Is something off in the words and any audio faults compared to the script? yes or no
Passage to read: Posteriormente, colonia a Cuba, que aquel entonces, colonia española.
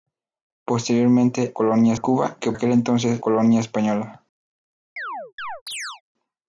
yes